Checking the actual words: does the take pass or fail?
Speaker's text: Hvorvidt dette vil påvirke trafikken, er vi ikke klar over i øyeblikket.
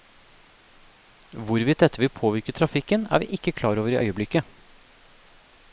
pass